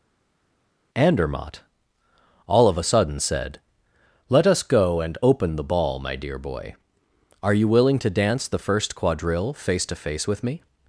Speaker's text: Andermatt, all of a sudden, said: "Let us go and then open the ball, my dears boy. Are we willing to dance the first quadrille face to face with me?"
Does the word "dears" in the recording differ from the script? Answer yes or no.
yes